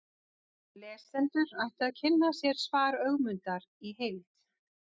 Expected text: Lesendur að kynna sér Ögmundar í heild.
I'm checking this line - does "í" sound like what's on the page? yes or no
yes